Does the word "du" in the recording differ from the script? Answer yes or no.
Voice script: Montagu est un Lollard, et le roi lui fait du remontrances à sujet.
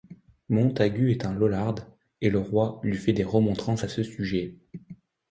yes